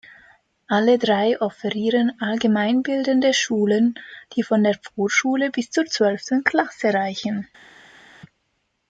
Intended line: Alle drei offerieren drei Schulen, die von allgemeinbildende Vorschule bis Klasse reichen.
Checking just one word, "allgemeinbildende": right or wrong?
wrong